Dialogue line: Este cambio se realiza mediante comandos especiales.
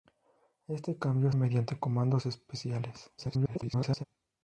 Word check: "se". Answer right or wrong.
wrong